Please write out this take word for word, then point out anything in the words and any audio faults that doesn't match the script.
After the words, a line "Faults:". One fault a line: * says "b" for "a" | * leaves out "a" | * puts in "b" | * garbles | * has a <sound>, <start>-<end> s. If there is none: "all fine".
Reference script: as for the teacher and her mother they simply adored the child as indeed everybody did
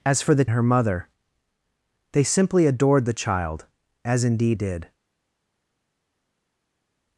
as for the her mother they simply adored the child as indeed did
Faults:
* leaves out "teacher and"
* leaves out "everybody"